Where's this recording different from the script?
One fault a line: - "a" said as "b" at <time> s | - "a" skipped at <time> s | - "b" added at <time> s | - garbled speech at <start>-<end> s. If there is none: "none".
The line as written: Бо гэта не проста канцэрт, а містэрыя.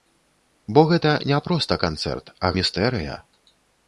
none